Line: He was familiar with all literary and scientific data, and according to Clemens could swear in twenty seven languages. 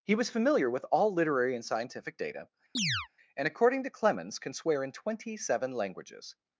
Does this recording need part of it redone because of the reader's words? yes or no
yes